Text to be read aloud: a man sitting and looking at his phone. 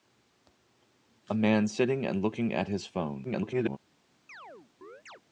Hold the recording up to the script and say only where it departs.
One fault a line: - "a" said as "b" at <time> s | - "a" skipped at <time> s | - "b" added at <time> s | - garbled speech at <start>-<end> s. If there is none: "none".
- garbled speech at 3.2-3.8 s